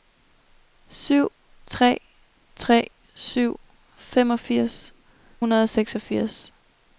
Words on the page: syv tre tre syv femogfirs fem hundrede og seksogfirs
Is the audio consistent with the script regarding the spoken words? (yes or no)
no